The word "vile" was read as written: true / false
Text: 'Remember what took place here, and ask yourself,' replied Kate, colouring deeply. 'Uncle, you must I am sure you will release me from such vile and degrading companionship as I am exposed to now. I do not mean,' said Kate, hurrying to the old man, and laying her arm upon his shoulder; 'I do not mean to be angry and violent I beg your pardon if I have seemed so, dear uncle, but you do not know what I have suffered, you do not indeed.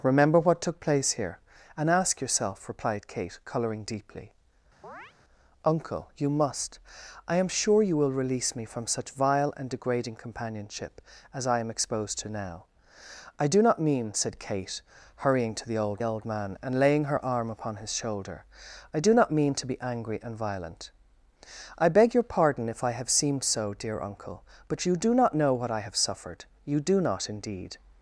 true